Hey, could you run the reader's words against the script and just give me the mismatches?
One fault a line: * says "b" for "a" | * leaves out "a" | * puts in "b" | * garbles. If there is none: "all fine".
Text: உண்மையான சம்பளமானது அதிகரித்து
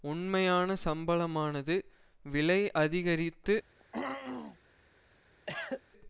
* puts in "விலை"